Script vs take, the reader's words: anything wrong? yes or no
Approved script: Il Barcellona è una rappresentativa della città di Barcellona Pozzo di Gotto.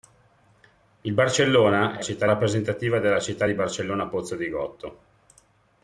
yes